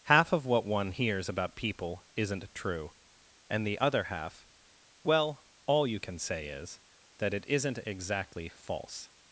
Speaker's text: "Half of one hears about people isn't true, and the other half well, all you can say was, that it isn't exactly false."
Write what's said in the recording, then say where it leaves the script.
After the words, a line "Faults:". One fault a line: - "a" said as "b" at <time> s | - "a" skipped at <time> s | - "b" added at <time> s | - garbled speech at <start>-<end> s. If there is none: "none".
"Half of what one hears about people isn't true, and the other half well, all you can say is, that it isn't exactly false."
Faults:
- "what" added at 0.5 s
- "was" said as "is" at 6.5 s